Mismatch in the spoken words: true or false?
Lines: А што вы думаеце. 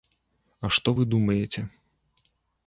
false